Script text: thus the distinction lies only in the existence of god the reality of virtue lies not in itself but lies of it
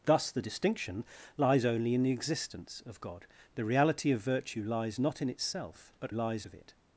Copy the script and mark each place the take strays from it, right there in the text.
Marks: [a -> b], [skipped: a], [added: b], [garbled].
thus the distinction lies only in the existence of god the reality of virtue lies not in itself but lies of it